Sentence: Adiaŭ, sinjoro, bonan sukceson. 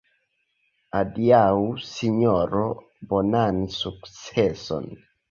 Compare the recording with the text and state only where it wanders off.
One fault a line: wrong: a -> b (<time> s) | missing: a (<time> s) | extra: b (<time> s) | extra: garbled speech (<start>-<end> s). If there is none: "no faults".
no faults